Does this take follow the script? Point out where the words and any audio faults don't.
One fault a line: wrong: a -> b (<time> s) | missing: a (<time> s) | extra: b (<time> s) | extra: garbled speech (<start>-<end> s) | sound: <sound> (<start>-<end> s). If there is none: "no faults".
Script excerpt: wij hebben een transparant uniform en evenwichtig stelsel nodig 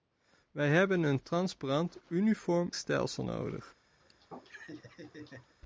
missing: en evenwichtig (2.7 s)
sound: laugh (4.0-5.5 s)